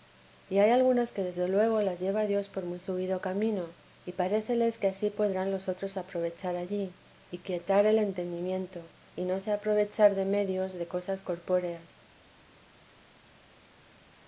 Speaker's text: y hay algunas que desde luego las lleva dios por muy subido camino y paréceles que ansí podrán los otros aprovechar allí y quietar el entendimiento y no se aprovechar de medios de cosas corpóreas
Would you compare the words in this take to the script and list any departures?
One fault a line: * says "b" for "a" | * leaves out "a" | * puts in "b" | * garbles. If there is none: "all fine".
all fine